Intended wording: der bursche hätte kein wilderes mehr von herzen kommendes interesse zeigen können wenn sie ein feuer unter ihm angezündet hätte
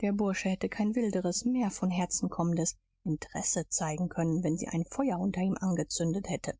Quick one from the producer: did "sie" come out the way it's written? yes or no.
yes